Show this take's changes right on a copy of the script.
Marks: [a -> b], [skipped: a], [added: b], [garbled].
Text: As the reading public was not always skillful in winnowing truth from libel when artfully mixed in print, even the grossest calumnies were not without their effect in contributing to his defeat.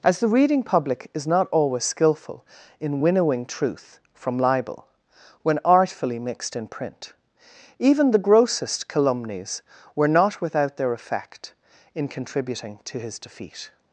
As the reading public [was -> is] not always skillful in winnowing truth from libel when artfully mixed in print, even the grossest calumnies were not without their effect in contributing to his defeat.